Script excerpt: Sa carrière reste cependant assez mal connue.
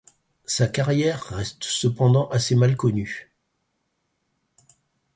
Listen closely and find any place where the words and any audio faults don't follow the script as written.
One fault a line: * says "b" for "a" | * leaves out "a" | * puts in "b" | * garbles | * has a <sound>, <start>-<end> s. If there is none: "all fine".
all fine